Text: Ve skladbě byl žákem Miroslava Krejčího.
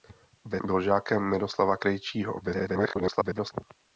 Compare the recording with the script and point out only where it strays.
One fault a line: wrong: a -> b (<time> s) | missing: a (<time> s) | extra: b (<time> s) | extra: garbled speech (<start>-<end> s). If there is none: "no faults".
missing: skladbě (0.6 s)
extra: garbled speech (2.4-3.5 s)